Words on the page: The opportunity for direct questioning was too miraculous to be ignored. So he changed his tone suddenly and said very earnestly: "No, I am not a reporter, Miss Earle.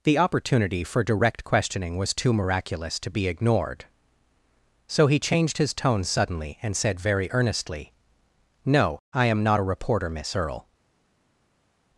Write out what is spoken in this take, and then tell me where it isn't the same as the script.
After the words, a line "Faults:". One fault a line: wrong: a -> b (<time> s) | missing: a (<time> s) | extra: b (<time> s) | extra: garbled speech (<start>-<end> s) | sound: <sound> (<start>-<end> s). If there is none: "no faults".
The opportunity for direct questioning was too miraculous to be ignored. So he changed his tone suddenly and said very earnestly: "No, I am not a reporter, Miss Earle.
Faults:
no faults